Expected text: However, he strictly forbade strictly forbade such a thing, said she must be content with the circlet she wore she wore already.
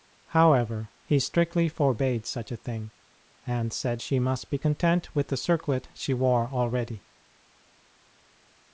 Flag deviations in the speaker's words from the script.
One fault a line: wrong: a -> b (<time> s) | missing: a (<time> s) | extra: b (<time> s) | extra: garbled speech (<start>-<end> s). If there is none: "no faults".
missing: strictly forbade (2.3 s)
extra: and (3.5 s)
missing: she wore (6.5 s)